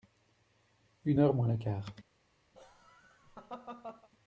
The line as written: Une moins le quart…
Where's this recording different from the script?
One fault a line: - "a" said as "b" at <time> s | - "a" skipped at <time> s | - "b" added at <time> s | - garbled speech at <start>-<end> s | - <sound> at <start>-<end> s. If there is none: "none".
- "heure" added at 1.2 s
- laugh at 2.5-4.1 s